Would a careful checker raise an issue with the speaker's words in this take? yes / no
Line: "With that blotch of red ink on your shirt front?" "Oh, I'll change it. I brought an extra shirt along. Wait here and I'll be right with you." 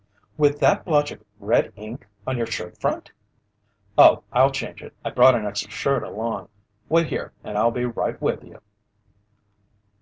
no